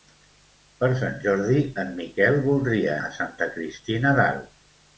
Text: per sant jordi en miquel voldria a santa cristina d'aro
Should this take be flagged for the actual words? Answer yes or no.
no